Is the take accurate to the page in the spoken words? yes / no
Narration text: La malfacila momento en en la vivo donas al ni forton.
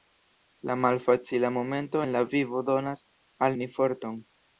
no